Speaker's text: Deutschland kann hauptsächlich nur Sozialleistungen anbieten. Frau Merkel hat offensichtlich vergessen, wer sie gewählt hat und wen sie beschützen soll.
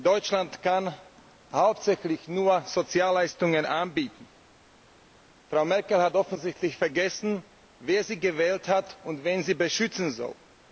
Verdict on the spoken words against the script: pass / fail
pass